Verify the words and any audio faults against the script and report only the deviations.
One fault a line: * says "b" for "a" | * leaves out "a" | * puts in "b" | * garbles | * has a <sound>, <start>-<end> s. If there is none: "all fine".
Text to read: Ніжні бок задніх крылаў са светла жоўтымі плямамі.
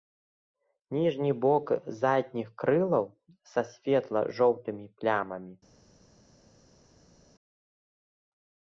all fine